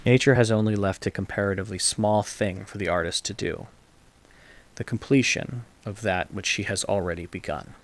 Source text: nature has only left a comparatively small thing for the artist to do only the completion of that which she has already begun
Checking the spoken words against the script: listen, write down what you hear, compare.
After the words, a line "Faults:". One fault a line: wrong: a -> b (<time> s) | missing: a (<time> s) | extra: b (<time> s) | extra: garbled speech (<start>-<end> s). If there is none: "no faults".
nature has only left a comparatively small thing for the artist to do the completion of that which she has already begun
Faults:
missing: only (3.7 s)